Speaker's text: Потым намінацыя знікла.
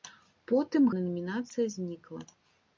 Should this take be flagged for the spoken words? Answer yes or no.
no